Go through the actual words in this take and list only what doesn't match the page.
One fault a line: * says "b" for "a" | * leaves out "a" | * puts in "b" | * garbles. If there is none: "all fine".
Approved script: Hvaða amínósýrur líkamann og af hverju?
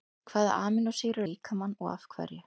all fine